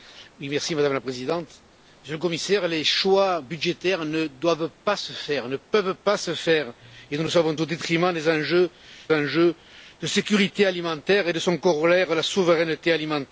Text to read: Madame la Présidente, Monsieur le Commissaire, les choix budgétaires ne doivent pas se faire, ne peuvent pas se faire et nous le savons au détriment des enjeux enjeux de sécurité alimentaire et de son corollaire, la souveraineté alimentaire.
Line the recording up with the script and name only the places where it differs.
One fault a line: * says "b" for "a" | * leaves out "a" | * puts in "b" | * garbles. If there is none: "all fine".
all fine